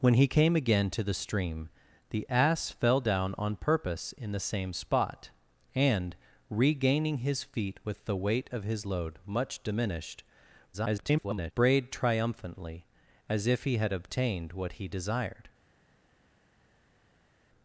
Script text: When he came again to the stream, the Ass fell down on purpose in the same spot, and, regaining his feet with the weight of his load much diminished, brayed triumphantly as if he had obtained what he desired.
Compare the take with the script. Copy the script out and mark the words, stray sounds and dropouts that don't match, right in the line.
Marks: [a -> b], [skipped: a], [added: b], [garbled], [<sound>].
When he came again to the stream, the Ass fell down on purpose in the same spot, and, regaining his feet with the weight of his load much diminished, [garbled] brayed triumphantly as if he had obtained what he desired.